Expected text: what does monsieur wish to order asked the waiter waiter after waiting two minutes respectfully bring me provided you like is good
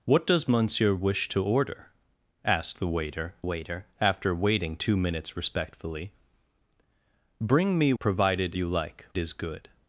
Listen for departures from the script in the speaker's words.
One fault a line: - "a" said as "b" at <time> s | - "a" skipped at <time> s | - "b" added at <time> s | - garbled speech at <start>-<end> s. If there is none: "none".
none